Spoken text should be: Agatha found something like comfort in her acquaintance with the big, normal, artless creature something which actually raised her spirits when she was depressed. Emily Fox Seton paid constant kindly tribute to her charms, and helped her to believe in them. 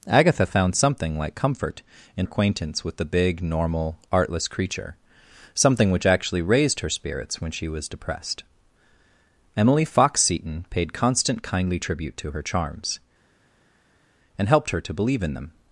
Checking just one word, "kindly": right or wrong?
right